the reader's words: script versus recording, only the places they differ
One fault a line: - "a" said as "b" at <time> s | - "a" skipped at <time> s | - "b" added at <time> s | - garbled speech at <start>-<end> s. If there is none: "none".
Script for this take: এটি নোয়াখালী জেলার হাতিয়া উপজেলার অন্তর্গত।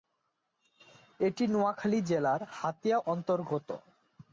- "উপজেলার" skipped at 3.0 s